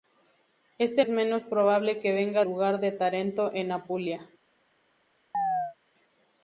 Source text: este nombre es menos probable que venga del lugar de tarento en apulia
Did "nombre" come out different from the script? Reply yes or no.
yes